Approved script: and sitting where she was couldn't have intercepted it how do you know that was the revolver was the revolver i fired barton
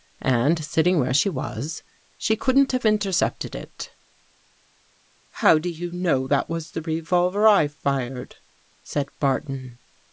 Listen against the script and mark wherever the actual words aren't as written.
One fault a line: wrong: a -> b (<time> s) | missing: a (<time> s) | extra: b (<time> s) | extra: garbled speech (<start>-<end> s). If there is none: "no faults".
extra: she (2.2 s)
missing: was the revolver (7.5 s)
extra: said (8.8 s)